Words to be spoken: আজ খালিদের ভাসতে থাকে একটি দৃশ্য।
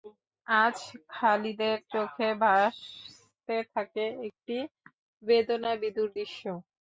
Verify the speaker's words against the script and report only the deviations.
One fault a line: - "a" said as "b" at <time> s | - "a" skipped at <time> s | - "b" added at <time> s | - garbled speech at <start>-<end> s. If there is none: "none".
- "চোখে" added at 1.9 s
- "বেদনাবিধুর" added at 5.2 s